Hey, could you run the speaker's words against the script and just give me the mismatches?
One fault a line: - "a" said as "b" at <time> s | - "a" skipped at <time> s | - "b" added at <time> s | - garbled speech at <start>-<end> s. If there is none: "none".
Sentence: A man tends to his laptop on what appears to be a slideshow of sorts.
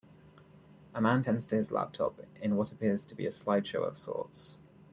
- "on" said as "in" at 2.4 s